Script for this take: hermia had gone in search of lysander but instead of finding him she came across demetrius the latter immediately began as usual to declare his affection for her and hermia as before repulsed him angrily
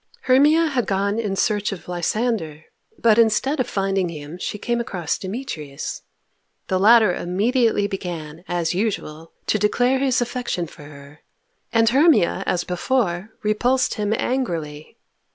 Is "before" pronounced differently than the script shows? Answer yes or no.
no